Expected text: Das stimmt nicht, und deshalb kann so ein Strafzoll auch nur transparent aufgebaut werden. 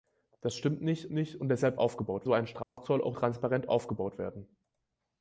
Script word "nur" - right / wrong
wrong